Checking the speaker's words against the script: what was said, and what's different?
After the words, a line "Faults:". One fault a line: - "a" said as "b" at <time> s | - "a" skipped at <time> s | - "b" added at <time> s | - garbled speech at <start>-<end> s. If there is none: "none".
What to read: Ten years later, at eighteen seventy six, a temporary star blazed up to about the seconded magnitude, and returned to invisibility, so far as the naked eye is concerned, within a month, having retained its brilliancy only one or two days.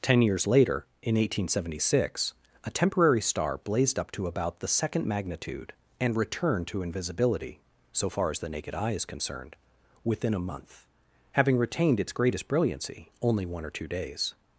Ten years later, in eighteen seventy six, a temporary star blazed up to about the second magnitude, and returned to invisibility, so far as the naked eye is concerned, within a month, having retained its greatest brilliancy only one or two days.
Faults:
- "at" said as "in" at 1.0 s
- "seconded" said as "second" at 4.7 s
- "greatest" added at 12.1 s